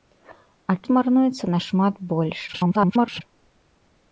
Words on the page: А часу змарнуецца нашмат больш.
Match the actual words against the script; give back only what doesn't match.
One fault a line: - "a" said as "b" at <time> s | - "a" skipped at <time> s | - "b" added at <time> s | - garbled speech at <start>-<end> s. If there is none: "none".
- "часу" skipped at 0.8 s
- garbled speech at 2.5-3.2 s